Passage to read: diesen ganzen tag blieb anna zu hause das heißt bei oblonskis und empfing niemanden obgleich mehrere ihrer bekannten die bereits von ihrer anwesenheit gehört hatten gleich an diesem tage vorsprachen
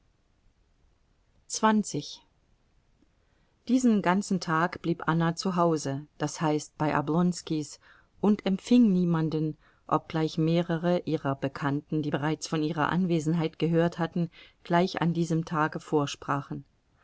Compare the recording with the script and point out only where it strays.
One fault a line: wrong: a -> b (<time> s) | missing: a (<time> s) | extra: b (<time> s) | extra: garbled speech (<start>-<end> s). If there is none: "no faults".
no faults